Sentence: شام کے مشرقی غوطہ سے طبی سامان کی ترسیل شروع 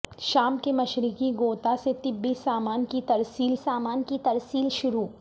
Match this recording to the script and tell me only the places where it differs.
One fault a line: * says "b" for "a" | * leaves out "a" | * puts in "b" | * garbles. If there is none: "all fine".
* puts in "سامان کی ترسیل"